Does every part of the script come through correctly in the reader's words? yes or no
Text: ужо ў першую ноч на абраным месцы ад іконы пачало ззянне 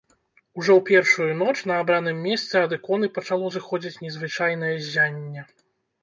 no